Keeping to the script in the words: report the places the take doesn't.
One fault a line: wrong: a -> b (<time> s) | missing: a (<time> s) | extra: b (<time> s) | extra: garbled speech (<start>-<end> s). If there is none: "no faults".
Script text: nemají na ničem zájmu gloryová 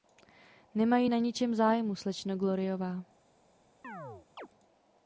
extra: slečno (2.0 s)